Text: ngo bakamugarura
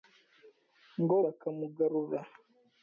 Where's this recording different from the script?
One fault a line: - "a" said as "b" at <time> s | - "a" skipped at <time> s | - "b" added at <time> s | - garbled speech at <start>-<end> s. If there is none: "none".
none